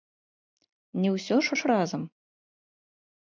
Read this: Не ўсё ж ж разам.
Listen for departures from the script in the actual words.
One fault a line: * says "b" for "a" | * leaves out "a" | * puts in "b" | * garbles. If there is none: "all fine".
all fine